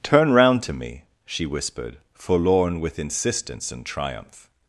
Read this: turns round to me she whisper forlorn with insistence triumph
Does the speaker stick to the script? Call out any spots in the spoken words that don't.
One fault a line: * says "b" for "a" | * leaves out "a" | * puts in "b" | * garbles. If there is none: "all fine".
* says "turn" for "turns"
* says "whispered" for "whisper"
* puts in "and"